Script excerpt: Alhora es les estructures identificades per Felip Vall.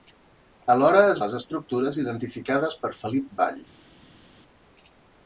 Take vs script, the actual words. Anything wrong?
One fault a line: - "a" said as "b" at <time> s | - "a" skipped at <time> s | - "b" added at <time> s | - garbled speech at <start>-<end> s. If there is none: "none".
none